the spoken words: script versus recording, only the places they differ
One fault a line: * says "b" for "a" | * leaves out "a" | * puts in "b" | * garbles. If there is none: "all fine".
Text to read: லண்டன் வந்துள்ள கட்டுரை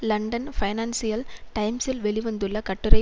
* puts in "பைனான்சியல் டைம்ஸில் வெளி"